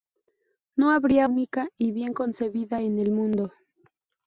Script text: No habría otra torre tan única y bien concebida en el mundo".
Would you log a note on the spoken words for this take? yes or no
yes